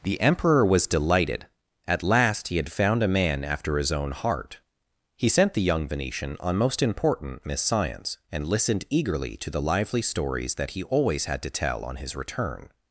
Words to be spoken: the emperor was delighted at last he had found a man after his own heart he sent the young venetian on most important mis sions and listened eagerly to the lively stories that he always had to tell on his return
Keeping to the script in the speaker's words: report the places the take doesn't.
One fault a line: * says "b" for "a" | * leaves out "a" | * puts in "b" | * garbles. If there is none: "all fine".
* says "miss science" for "mis sions"